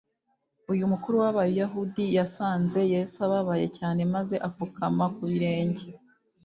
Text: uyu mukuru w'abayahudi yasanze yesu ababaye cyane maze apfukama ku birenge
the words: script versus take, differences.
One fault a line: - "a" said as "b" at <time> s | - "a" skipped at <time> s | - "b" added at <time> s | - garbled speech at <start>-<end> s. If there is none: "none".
none